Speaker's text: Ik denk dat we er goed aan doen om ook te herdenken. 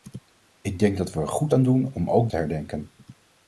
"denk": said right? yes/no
yes